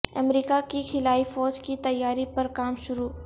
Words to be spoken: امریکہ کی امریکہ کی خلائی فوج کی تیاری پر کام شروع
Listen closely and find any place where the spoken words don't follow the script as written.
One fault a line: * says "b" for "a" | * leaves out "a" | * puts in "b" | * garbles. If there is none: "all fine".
* leaves out "امریکہ کی"